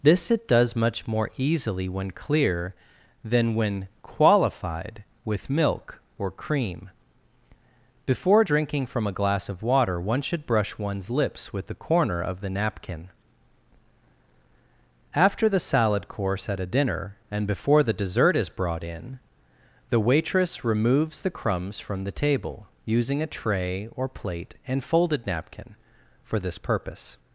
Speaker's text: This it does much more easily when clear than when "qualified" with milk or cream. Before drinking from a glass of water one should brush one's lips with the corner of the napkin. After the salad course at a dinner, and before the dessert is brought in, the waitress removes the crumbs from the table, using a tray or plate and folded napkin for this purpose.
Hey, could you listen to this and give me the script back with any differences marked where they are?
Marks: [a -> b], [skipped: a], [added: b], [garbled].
This it does much more easily when clear than when "qualified" with milk or cream. Before drinking from a glass of water one should brush one's lips with the corner of the napkin. After the salad course at a dinner, and before the dessert is brought in, the waitress removes the crumbs from the table, using a tray or plate and folded napkin for this purpose.